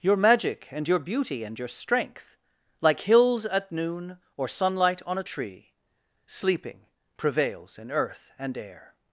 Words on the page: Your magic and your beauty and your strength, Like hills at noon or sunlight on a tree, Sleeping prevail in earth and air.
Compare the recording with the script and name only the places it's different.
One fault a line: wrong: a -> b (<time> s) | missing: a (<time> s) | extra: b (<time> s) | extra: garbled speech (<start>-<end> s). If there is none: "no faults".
wrong: prevail -> prevails (7.2 s)